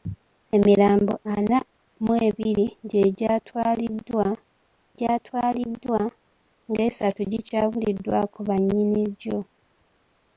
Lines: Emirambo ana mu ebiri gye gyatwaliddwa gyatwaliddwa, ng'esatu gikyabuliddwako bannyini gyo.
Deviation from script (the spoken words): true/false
false